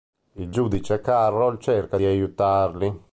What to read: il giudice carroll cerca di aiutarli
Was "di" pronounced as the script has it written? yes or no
yes